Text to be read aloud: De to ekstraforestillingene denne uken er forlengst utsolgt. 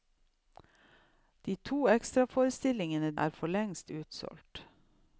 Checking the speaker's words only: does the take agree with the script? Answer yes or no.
no